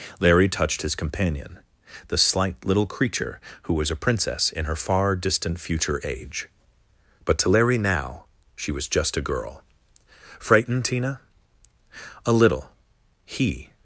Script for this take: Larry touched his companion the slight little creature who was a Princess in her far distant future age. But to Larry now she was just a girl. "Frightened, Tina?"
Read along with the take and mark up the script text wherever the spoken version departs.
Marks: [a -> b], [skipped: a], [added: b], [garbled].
Larry touched his companion the slight little creature who was a Princess in her far distant future age. But to Larry now she was just a girl. "Frightened, Tina?" [added: A little He]